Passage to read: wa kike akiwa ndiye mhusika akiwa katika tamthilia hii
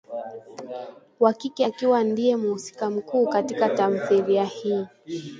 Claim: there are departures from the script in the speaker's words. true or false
true